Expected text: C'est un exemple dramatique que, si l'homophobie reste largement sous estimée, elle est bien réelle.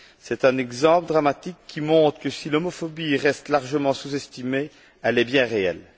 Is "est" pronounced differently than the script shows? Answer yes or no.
no